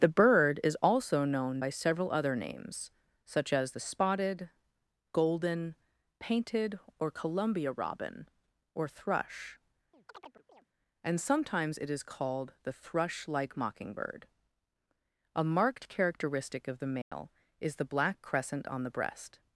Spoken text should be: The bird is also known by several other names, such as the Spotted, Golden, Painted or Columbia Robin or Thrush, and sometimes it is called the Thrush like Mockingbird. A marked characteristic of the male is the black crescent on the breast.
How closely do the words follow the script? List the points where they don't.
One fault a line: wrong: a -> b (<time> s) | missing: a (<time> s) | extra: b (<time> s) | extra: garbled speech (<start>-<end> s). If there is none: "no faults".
no faults